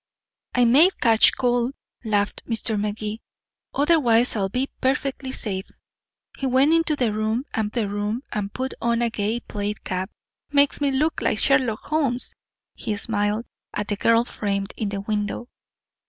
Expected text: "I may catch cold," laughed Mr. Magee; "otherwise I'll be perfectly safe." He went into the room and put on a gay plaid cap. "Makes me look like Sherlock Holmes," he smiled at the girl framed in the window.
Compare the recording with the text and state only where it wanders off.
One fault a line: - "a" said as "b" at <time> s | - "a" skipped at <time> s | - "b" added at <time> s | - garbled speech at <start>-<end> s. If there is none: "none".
- "the room and" added at 7.7 s